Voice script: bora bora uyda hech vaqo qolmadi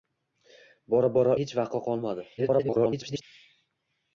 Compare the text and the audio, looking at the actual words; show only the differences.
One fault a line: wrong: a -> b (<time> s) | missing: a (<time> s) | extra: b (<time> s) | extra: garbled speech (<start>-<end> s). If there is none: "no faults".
missing: uyda (1.4 s)
extra: garbled speech (2.4-3.2 s)